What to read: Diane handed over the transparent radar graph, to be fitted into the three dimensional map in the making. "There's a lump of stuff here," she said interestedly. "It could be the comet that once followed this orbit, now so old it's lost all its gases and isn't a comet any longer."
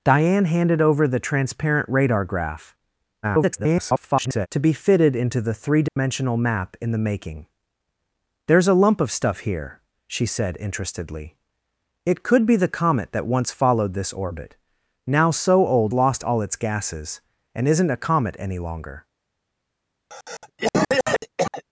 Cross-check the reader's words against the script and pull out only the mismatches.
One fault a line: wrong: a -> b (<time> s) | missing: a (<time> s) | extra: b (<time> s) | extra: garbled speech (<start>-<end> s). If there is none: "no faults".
extra: garbled speech (3.2-4.5 s)
missing: it's (15.9 s)